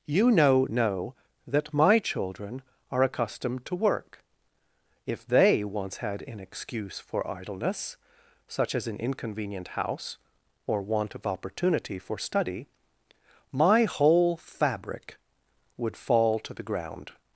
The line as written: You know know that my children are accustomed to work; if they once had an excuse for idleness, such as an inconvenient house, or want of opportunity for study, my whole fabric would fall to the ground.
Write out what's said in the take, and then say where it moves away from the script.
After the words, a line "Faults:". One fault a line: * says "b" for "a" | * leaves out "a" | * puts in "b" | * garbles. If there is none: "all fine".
You know know that my children are accustomed to work; if they once had an excuse for idleness, such as an inconvenient house, or want of opportunity for study, my whole fabric would fall to the ground.
Faults:
all fine